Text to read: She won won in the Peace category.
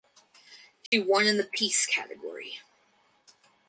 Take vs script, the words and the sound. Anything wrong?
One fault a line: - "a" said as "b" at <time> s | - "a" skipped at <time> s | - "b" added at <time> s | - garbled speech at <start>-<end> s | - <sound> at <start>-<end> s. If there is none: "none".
- dropout at 0.9-0.9 s
- "won" skipped at 1.3 s